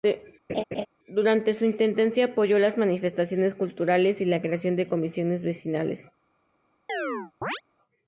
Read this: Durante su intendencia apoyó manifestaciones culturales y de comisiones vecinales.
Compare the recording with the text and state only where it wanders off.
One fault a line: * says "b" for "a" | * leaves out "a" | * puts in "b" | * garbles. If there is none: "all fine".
* puts in "las"
* puts in "la creación"